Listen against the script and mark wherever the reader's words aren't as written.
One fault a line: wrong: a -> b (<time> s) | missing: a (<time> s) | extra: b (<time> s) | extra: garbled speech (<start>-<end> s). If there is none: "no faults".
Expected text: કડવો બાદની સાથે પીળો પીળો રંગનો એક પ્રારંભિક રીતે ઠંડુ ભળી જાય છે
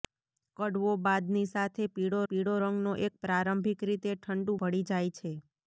no faults